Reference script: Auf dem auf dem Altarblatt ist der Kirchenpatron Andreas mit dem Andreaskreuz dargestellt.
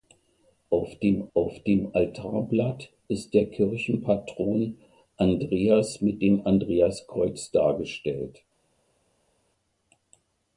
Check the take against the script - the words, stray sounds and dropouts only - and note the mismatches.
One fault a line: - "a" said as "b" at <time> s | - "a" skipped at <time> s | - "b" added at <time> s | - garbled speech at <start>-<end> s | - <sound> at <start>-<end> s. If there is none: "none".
none